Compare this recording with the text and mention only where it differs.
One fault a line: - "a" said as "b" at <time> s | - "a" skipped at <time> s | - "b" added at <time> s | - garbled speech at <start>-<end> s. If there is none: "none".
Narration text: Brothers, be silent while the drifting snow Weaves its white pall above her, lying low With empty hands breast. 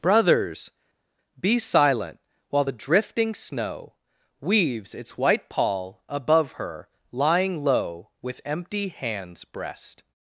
none